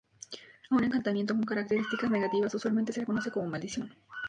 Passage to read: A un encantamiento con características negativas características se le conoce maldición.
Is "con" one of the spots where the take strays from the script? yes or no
no